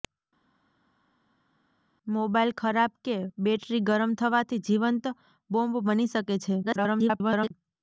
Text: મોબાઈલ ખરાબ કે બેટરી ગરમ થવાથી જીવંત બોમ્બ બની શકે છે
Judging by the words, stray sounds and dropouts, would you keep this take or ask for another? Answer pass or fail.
fail